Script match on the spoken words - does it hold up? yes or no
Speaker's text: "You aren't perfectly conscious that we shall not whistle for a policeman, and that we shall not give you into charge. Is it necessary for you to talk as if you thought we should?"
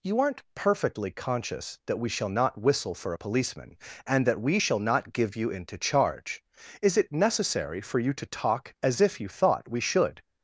yes